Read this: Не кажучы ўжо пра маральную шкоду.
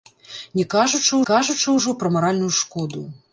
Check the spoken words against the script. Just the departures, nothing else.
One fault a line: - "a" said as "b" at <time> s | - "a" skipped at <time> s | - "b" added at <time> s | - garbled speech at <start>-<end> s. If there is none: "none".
- "кажучы" added at 1.3 s